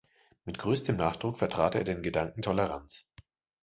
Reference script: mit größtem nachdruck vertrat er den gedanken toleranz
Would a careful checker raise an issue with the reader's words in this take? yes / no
no